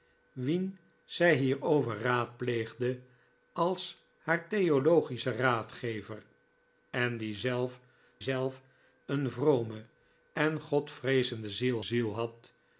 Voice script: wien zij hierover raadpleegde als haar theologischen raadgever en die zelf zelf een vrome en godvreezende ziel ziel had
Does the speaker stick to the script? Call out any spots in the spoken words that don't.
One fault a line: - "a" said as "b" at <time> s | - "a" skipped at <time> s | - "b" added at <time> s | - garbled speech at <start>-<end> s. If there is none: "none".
none